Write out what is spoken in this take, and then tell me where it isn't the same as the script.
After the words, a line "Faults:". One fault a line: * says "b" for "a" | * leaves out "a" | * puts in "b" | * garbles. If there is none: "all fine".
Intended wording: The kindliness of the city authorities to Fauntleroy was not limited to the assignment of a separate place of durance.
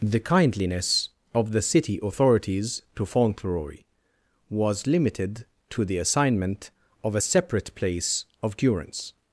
The kindliness of the city authorities to Fauntleroy was limited to the assignment of a separate place of durance.
Faults:
* leaves out "not"